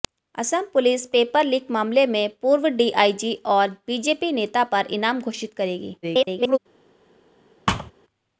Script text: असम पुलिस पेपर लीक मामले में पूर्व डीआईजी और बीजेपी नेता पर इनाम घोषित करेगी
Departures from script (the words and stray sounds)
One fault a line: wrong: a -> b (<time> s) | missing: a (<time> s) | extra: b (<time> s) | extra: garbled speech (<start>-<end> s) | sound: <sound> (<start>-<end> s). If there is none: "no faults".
extra: garbled speech (6.0-6.6 s)
sound: thud (7.7-7.9 s)